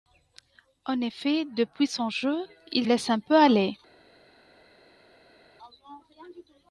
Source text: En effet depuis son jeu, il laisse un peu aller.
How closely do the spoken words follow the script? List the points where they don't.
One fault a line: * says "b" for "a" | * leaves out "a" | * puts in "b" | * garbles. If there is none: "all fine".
all fine